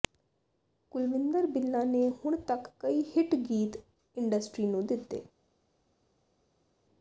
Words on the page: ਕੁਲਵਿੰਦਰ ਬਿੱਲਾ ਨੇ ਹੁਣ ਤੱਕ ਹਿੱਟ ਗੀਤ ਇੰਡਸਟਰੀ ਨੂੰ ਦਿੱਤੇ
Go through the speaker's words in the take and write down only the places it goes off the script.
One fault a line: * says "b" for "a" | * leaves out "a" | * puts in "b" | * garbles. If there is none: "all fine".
* puts in "ਕਈ"